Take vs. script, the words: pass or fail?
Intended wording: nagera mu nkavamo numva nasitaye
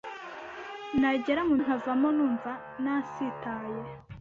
pass